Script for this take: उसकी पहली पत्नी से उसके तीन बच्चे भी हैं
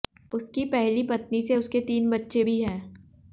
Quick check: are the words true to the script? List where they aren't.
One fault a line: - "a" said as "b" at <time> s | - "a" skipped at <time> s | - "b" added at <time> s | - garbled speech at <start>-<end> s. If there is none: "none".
none